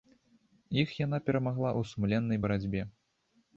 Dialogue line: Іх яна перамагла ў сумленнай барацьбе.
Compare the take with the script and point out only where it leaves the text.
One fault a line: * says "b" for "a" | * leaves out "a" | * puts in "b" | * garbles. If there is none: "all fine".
all fine